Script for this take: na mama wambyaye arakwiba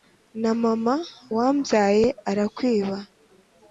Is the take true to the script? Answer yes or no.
yes